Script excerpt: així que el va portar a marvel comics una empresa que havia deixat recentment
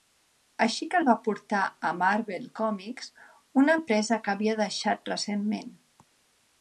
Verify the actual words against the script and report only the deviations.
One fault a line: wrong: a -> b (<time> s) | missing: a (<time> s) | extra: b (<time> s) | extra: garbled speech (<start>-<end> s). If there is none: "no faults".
no faults